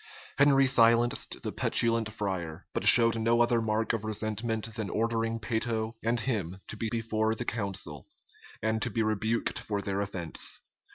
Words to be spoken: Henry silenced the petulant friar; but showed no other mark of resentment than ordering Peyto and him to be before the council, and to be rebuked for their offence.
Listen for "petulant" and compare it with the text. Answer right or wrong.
right